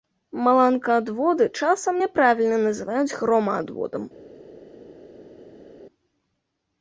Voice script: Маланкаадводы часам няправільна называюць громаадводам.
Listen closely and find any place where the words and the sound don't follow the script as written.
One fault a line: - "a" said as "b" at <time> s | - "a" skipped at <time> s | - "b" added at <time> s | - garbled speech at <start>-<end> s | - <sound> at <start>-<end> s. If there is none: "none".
none